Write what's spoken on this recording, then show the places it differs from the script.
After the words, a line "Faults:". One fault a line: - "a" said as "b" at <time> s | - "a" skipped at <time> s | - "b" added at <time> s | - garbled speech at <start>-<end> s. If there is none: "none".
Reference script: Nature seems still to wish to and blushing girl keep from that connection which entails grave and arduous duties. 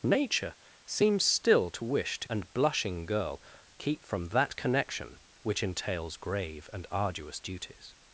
Nature seems still to wish to and blushing girl keep from that connection which entails grave and arduous duties.
Faults:
none